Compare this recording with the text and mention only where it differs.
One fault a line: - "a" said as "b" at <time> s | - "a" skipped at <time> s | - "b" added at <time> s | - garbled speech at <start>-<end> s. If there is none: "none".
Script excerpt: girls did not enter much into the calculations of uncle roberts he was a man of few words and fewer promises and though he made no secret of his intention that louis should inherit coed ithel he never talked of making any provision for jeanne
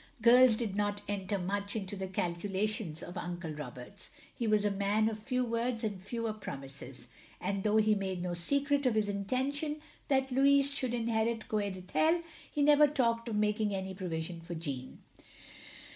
none